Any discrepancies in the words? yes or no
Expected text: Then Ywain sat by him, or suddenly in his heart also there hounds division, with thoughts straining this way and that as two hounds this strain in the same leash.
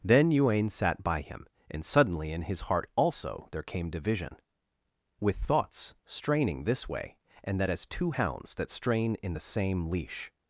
yes